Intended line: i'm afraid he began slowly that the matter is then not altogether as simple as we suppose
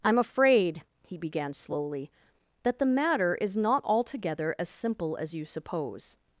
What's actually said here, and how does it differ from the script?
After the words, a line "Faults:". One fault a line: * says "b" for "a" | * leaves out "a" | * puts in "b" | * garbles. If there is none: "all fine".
i'm afraid he began slowly that the matter is not altogether as simple as you suppose
Faults:
* leaves out "then"
* says "you" for "we"